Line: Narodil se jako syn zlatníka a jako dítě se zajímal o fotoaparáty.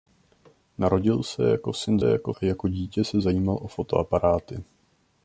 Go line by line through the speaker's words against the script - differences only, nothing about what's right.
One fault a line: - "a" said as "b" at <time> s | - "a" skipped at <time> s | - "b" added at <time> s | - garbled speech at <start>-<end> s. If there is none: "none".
- "zlatníka" said as "jako" at 2.0 s